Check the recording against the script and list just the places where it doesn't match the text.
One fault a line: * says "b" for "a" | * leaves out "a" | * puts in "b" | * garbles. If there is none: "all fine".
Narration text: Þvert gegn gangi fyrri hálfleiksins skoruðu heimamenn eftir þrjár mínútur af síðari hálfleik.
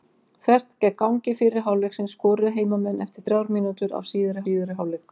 * puts in "síðari"